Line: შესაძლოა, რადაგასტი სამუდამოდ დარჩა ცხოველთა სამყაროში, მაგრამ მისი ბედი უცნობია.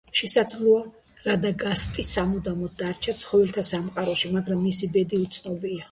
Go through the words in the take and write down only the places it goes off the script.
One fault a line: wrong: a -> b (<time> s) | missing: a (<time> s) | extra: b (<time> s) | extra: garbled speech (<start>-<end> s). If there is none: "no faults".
no faults